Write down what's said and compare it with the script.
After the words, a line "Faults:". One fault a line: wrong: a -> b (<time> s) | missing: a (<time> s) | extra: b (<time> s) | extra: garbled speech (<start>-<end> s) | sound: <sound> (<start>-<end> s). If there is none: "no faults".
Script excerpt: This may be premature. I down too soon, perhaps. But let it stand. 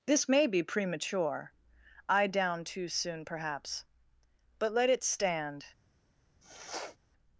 This may be premature. I down too soon, perhaps. But let it stand.
Faults:
sound: sniff (6.4-7.0 s)